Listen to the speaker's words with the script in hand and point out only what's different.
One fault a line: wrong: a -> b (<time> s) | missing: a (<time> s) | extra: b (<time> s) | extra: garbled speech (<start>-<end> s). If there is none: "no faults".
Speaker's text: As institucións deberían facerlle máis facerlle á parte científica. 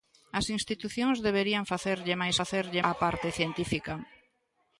no faults